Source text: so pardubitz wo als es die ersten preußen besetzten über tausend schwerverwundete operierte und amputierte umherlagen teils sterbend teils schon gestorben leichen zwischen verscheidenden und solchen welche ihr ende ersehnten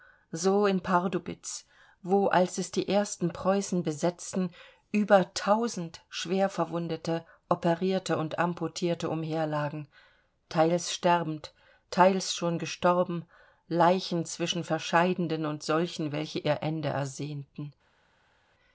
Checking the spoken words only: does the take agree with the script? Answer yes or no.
no